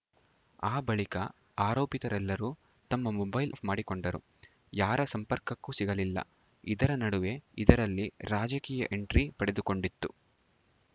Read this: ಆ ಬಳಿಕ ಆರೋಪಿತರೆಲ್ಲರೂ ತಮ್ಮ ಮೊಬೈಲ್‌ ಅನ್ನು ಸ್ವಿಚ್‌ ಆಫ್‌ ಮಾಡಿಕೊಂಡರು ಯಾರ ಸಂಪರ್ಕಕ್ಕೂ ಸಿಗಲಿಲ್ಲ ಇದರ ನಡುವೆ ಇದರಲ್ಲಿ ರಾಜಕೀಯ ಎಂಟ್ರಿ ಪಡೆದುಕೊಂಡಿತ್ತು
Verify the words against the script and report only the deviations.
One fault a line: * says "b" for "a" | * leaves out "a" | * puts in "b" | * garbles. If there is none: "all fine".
* leaves out "ಅನ್ನು ಸ್ವಿಚ್"